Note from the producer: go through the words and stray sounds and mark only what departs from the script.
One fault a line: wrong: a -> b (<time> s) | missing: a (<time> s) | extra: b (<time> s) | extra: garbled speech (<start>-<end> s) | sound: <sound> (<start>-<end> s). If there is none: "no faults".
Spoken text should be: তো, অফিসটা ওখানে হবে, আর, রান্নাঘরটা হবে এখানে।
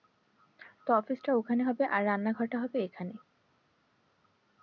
no faults